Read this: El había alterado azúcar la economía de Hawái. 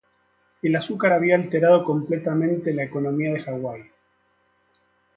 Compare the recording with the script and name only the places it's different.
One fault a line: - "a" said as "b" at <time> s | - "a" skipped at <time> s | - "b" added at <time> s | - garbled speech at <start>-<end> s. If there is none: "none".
- "azúcar" added at 0.8 s
- "azúcar" said as "completamente" at 1.8 s